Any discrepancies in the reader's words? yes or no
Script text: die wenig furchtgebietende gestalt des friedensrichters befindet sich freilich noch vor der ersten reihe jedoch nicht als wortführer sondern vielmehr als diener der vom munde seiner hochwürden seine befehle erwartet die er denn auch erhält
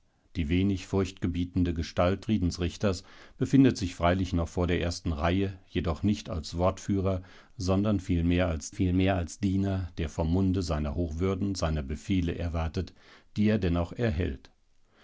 yes